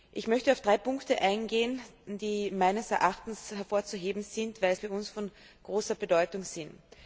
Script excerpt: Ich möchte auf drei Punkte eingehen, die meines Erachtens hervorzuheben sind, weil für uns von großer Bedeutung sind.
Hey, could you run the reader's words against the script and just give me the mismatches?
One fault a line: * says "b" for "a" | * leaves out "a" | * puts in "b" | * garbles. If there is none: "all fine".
all fine